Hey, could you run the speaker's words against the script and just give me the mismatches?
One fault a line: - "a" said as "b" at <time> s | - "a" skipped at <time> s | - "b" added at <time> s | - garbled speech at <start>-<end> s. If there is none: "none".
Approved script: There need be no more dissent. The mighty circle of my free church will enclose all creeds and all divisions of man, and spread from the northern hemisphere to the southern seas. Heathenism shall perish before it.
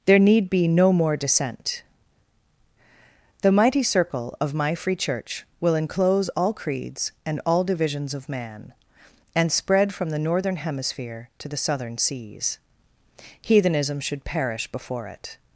- "shall" said as "should" at 14.0 s